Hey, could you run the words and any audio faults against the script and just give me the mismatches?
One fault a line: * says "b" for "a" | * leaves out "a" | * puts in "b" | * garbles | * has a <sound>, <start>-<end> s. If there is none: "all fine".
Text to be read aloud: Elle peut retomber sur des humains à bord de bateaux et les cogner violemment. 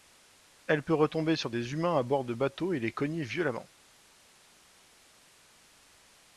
all fine